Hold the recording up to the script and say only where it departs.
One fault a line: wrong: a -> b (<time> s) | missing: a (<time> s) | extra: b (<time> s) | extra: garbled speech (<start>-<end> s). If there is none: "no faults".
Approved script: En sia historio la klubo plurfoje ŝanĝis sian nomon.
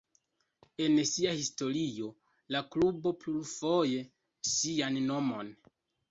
missing: ŝanĝis (4.0 s)